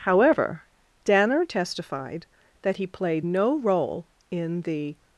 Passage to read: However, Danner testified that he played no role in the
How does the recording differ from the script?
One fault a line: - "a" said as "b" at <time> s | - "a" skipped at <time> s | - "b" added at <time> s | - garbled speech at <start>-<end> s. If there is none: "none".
none